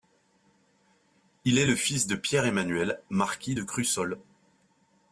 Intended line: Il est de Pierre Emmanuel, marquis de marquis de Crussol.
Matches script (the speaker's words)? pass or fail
fail